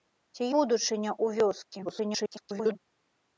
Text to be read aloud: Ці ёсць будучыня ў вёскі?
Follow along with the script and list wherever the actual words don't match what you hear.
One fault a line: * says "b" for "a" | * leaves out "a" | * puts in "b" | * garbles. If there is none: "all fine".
* leaves out "ёсць"
* garbles